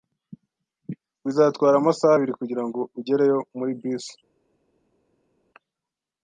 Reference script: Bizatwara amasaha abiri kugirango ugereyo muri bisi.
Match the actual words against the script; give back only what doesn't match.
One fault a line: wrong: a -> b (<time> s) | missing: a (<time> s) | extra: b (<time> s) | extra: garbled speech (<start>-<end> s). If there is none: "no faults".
no faults